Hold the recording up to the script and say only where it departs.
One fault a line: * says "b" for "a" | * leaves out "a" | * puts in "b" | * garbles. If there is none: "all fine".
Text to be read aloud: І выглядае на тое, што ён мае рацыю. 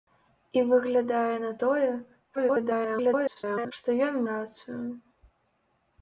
* garbles
* leaves out "мае"